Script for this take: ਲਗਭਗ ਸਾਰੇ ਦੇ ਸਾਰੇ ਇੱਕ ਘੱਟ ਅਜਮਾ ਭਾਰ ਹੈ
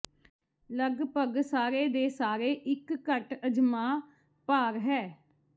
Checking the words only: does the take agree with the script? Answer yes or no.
yes